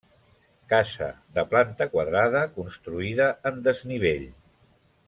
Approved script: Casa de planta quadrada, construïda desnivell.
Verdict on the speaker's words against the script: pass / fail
fail